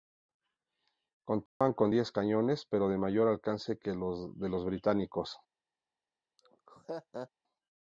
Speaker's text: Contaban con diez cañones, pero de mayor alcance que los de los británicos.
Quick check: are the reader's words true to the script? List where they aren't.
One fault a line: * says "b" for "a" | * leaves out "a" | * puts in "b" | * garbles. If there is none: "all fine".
all fine